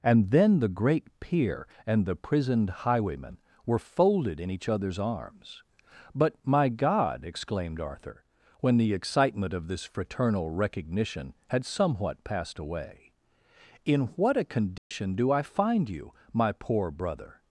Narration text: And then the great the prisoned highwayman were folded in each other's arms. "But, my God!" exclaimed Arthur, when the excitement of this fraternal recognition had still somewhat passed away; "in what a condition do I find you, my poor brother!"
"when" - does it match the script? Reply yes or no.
yes